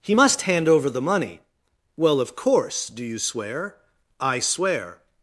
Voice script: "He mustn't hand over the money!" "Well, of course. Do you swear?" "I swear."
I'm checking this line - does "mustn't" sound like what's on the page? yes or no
no